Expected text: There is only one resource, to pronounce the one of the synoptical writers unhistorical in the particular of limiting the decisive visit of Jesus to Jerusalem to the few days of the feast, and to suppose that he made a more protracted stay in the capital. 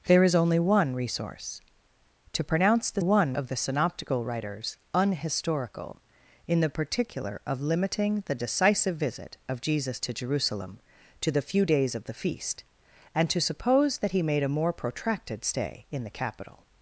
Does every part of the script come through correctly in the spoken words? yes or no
yes